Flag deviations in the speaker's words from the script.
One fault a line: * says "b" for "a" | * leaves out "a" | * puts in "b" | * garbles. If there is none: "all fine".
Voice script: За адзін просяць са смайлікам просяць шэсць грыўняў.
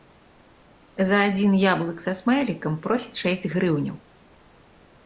* says "яблык" for "просяць"